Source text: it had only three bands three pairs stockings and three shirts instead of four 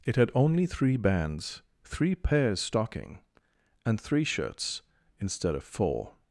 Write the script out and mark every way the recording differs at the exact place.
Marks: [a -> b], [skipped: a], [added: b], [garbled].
it had only three bands three pairs [stockings -> stocking] and three shirts instead of four